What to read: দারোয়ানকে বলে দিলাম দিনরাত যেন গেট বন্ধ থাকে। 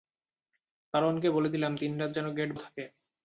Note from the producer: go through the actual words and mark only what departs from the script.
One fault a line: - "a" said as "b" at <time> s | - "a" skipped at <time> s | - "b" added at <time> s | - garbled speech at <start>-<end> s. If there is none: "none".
- "বন্ধ" skipped at 2.5 s